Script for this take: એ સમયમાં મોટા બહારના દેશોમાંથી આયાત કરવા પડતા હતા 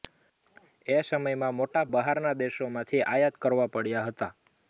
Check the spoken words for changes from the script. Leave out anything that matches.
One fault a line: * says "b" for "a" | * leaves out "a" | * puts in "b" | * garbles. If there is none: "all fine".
all fine